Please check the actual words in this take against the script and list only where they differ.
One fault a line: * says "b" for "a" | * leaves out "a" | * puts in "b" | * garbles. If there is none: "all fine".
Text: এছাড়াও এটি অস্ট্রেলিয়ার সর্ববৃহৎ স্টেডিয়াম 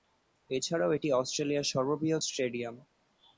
all fine